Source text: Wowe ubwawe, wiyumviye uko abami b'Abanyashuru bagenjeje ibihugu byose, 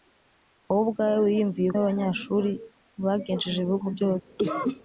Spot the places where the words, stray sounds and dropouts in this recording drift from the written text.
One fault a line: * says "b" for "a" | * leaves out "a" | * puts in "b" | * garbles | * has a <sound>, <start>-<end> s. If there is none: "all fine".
* leaves out "uko abami"
* has a cough, 4.4-4.8 s